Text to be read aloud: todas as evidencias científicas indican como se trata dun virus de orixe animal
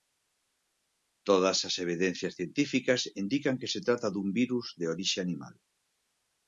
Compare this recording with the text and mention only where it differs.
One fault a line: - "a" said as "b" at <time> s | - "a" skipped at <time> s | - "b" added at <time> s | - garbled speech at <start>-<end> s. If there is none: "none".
- "como" said as "que" at 3.6 s